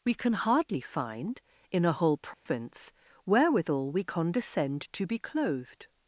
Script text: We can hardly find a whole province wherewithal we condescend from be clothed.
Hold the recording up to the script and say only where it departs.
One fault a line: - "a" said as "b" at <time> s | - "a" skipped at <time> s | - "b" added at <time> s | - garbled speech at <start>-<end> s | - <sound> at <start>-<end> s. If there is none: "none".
- "in" added at 1.7 s
- dropout at 2.3-2.5 s
- "from" said as "to" at 4.9 s